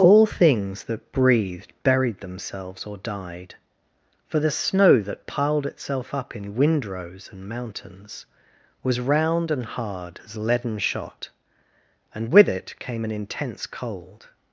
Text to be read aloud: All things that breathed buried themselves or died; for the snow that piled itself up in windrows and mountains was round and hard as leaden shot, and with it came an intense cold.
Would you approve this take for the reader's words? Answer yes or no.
yes